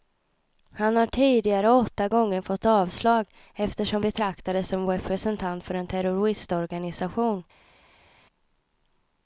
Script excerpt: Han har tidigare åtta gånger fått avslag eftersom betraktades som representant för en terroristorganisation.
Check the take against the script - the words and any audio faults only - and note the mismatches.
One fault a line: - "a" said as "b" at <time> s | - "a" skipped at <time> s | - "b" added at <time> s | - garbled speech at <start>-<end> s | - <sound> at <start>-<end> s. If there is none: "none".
none